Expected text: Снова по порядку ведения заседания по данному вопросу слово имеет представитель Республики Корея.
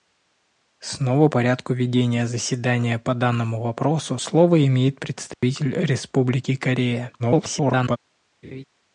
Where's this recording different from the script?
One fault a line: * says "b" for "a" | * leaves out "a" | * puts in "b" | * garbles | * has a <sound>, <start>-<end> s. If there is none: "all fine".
* leaves out "по"
* has a dropout, 5.3-5.4 s
* garbles
* has a laugh, 8.4-8.6 s